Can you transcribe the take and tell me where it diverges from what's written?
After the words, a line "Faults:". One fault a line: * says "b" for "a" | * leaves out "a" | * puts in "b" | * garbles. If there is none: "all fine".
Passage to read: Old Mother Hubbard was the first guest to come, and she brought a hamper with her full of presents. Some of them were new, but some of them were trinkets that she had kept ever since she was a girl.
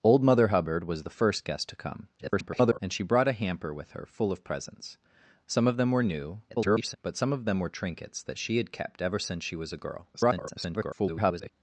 Old Mother Hubbard was the first guest to come, [garbled] and she brought a hamper with her full of presents. Some of them were new, [garbled] but some of them were trinkets that she had kept ever since she was a girl. [garbled]
Faults:
* garbles
* garbles
* garbles